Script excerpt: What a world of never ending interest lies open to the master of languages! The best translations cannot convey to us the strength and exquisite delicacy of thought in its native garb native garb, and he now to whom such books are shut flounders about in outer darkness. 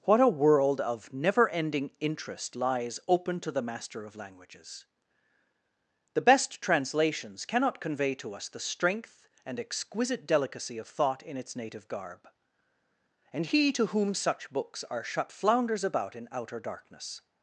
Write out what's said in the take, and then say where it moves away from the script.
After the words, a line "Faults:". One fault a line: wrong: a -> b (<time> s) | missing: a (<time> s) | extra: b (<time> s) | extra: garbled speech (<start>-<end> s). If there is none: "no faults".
What a world of never ending interest lies open to the master of languages! The best translations cannot convey to us the strength and exquisite delicacy of thought in its native garb, and he to whom such books are shut flounders about in outer darkness.
Faults:
missing: native garb (12.3 s)
missing: now (13.7 s)